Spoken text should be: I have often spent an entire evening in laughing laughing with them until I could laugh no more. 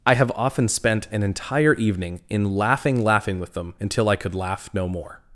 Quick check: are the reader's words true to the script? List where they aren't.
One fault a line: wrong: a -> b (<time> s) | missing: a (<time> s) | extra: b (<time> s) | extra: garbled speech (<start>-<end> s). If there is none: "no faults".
no faults